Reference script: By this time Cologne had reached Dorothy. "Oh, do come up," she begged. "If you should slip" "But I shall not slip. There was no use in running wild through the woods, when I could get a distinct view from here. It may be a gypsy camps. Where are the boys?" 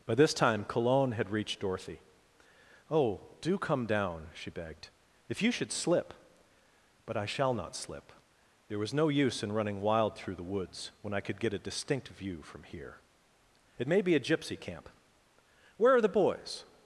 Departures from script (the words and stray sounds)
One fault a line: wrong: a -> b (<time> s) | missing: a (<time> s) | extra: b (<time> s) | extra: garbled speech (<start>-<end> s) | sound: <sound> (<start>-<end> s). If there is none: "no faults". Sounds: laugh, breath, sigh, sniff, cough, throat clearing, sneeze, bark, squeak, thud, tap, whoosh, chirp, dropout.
wrong: up -> down (3.9 s)
wrong: camps -> camp (14.6 s)